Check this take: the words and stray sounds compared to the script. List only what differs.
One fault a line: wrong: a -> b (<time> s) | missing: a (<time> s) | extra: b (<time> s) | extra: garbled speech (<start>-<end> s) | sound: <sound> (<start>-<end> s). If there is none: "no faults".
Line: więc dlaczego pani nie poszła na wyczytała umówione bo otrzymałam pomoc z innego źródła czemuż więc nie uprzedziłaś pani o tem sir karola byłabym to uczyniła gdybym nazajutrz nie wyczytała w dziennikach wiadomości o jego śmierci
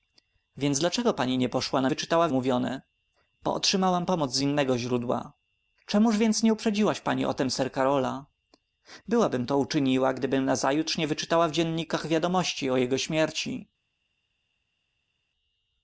no faults